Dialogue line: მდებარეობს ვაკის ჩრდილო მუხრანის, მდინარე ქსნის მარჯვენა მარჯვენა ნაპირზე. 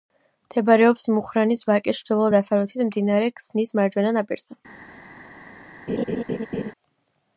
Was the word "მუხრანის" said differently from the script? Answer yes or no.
yes